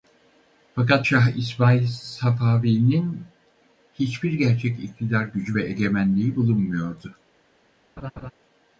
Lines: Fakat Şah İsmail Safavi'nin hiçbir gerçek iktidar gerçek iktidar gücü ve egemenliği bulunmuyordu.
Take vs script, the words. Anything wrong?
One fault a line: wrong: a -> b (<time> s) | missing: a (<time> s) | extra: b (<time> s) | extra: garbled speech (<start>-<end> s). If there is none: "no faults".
missing: gerçek iktidar (5.2 s)